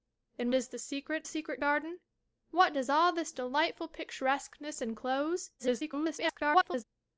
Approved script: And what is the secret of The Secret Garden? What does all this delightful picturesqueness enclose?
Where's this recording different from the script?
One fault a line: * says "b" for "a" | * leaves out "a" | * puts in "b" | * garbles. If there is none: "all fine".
* leaves out "what"
* leaves out "of The"
* garbles